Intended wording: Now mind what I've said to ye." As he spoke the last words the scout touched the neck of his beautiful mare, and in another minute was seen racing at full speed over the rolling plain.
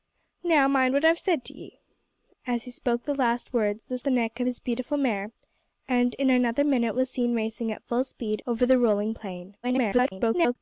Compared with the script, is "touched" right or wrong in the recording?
wrong